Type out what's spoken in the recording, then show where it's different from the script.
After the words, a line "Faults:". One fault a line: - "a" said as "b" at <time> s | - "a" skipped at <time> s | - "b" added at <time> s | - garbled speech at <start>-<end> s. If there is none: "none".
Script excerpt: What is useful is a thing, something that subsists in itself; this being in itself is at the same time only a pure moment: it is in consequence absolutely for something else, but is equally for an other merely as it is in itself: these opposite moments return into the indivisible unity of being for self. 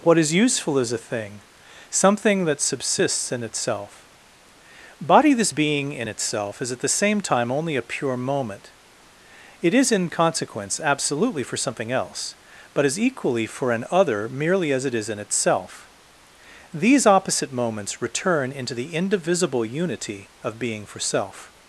What is useful is a thing, something that subsists in itself; body this being in itself is at the same time only a pure moment: it is in consequence absolutely for something else, but is equally for an other merely as it is in itself: these opposite moments return into the indivisible unity of being for self.
Faults:
- "body" added at 5.0 s